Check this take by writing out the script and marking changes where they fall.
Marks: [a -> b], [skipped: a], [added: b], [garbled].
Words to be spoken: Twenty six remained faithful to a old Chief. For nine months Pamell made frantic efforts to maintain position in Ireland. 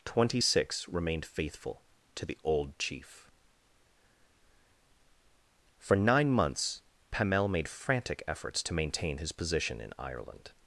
Twenty six remained faithful to [a -> the] old Chief. For nine months Pamell made frantic efforts to maintain [added: his] position in Ireland.